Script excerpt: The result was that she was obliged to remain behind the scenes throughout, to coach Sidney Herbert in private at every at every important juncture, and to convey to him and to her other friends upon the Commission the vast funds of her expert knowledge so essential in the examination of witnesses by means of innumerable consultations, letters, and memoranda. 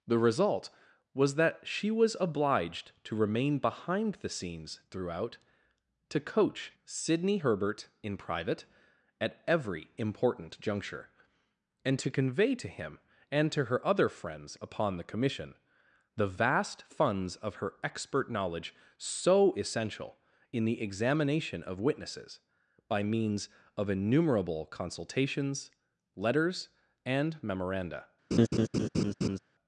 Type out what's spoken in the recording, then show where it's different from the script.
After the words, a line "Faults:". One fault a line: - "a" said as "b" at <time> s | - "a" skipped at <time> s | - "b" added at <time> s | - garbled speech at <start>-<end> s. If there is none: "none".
The result was that she was obliged to remain behind the scenes throughout, to coach Sidney Herbert in private at every important juncture, and to convey to him and to her other friends upon the Commission the vast funds of her expert knowledge so essential in the examination of witnesses by means of innumerable consultations, letters, and memoranda.
Faults:
- "at every" skipped at 9.9 s